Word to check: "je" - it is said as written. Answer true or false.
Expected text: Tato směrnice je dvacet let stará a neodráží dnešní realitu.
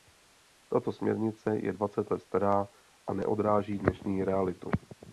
true